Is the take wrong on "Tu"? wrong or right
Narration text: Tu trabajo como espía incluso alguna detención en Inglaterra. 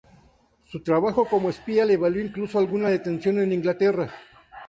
wrong